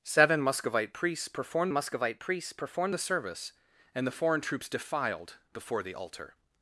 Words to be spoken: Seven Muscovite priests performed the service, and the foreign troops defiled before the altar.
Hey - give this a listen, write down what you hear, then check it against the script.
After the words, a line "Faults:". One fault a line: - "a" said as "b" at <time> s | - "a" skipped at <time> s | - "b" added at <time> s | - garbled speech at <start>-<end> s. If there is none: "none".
Seven Muscovite priests performed Muscovite priests performed the service, and the foreign troops defiled before the altar.
Faults:
- "Muscovite priests performed" added at 1.7 s